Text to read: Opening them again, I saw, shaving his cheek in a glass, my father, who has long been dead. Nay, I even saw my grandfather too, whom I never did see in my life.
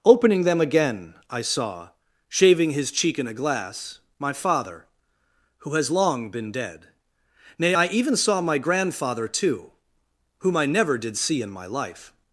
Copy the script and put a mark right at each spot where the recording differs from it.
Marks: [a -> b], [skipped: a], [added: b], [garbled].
Opening them again, I saw, shaving his cheek in a glass, my father, who has long been dead. Nay, I even saw my grandfather too, whom I never did see in my life.